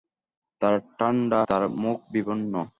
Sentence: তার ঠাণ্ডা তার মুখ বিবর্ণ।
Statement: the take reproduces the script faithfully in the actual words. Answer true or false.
true